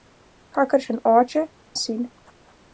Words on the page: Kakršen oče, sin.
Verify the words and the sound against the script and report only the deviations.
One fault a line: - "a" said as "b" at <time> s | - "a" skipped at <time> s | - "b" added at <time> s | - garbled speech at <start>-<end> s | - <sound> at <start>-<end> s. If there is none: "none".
none